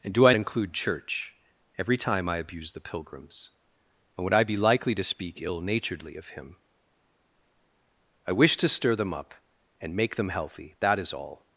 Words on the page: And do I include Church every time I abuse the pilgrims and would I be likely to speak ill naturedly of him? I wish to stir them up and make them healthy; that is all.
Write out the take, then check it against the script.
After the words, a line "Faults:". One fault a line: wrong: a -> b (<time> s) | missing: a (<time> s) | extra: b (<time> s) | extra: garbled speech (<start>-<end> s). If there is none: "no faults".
And do I include Church every time I abuse the pilgrims and would I be likely to speak ill naturedly of him? I wish to stir them up and make them healthy; that is all.
Faults:
no faults